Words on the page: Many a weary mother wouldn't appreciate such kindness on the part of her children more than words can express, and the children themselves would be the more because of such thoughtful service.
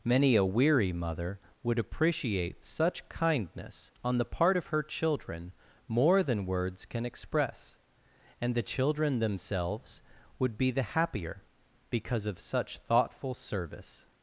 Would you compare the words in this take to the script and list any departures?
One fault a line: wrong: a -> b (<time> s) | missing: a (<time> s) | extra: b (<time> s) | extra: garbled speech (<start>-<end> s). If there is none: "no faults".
wrong: wouldn't -> would (1.6 s)
wrong: more -> happier (10.8 s)